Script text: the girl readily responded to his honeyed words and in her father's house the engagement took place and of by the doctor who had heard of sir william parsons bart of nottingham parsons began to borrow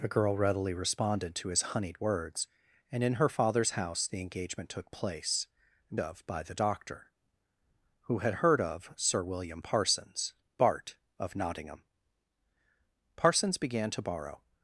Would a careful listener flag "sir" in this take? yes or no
no